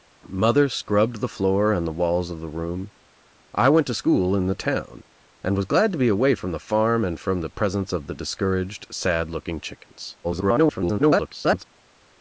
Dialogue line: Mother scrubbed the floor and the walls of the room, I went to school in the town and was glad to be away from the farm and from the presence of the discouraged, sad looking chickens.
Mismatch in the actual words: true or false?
true